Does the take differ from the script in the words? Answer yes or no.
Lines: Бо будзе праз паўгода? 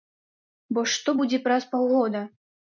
yes